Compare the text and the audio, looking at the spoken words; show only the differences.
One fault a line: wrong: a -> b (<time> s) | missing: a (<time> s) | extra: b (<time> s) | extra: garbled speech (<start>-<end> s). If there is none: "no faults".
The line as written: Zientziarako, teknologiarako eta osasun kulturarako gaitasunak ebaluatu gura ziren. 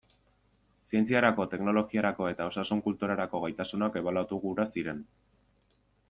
no faults